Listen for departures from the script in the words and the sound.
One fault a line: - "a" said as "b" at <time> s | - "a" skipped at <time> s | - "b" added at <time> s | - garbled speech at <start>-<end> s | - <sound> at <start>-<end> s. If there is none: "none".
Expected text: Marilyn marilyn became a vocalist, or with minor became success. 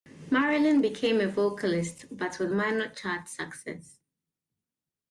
- "marilyn" skipped at 0.8 s
- "or" said as "but" at 2.2 s
- "became" said as "chart" at 2.9 s